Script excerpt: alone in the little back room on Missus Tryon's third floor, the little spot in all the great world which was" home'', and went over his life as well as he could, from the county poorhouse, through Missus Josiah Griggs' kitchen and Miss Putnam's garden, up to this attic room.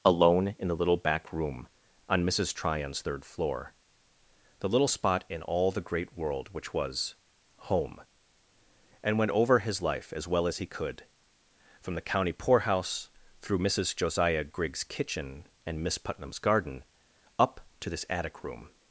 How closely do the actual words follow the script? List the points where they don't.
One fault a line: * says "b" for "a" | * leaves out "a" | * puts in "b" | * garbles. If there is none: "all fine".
all fine